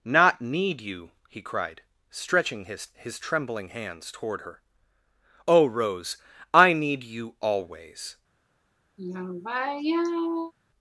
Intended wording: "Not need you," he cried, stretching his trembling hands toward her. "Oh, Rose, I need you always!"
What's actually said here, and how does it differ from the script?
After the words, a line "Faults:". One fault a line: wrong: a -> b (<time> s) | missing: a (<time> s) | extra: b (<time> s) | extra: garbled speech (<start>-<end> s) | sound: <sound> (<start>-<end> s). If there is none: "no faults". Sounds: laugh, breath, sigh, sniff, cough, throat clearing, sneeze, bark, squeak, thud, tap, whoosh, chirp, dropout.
"Not need you," he cried, stretching his his trembling hands toward her. "Oh, Rose, I need you always!"
Faults:
extra: his (2.9 s)
sound: sigh (9.0-10.5 s)